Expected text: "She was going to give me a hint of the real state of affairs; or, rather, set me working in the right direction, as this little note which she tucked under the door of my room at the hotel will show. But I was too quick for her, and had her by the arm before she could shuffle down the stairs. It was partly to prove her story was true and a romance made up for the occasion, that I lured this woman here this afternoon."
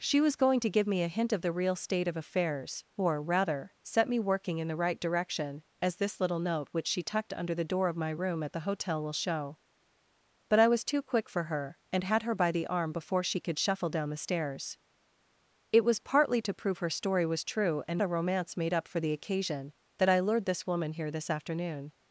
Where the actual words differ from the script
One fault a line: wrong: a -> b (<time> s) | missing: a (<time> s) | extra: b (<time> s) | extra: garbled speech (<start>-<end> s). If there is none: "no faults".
no faults